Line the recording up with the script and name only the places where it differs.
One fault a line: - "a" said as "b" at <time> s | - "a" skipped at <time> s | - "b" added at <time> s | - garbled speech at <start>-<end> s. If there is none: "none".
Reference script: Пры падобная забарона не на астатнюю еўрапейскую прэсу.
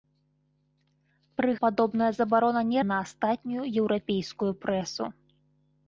none